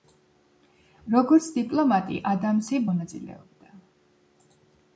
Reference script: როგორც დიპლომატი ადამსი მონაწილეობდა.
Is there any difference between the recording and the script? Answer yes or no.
no